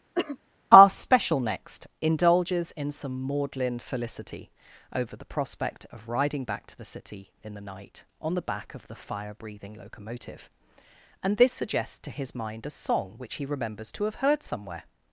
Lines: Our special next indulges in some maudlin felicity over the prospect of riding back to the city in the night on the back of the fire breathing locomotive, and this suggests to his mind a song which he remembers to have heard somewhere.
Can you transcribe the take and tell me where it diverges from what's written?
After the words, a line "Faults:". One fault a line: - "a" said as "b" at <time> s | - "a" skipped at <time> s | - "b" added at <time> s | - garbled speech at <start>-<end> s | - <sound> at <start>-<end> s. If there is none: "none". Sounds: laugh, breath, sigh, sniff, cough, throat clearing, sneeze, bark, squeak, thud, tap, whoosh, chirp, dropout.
Our special next indulges in some maudlin felicity over the prospect of riding back to the city in the night on the back of the fire breathing locomotive, and this suggests to his mind a song which he remembers to have heard somewhere.
Faults:
- cough at 0.2-0.4 s